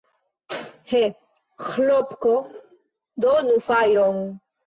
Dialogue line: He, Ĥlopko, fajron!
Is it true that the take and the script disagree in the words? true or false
true